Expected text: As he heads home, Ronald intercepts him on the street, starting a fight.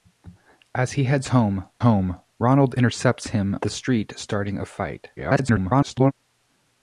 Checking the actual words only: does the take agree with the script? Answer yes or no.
no